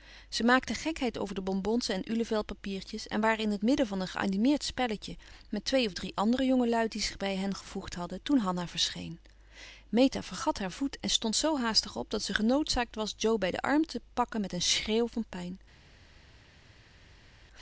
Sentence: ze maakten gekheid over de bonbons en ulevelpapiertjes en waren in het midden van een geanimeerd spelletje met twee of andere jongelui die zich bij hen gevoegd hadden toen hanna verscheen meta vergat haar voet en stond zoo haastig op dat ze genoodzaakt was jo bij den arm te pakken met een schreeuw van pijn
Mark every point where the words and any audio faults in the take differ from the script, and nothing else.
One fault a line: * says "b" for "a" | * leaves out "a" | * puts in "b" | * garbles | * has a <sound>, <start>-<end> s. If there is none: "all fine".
* puts in "drie"